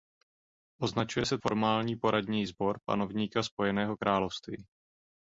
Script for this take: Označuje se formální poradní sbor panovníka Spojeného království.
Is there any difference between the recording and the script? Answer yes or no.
no